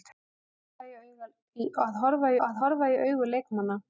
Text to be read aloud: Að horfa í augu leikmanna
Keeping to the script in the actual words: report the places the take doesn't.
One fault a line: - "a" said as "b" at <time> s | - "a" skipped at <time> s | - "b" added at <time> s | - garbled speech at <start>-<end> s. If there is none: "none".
- "að horfa" added at 2.5 s